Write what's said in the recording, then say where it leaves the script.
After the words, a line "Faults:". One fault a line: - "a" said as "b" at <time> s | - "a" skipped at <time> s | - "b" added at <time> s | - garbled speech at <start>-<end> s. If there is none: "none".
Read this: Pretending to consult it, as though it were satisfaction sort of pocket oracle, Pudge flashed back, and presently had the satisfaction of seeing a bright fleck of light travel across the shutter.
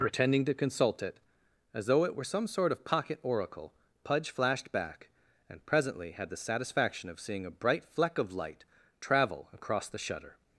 Pretending to consult it, as though it were some sort of pocket oracle, Pudge flashed back, and presently had the satisfaction of seeing a bright fleck of light travel across the shutter.
Faults:
- "satisfaction" said as "some" at 2.2 s